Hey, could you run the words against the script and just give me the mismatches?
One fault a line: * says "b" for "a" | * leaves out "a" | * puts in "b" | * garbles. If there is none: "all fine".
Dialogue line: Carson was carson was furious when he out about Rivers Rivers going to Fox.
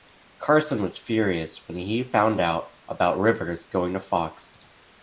* leaves out "carson was"
* puts in "found"
* leaves out "Rivers"